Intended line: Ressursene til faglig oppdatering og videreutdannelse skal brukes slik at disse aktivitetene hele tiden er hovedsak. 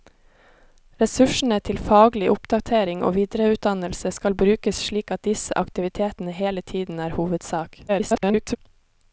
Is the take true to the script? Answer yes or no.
no